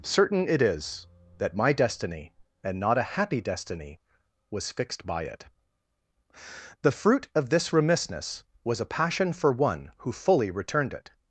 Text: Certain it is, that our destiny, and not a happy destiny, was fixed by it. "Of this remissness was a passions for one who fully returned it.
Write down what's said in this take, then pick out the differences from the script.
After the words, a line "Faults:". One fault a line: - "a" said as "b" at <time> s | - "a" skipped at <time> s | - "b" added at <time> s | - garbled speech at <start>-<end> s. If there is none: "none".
Certain it is, that my destiny, and not a happy destiny, was fixed by it. "The fruit of this remissness was a passion for one who fully returned it.
Faults:
- "our" said as "my" at 1.6 s
- "The fruit" added at 6.8 s
- "passions" said as "passion" at 8.8 s